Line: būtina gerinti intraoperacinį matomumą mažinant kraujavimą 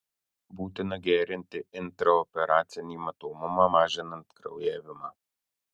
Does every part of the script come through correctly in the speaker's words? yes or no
yes